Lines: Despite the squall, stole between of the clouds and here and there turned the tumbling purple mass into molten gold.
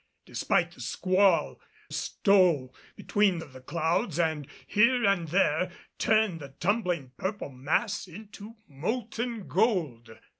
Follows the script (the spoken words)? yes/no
yes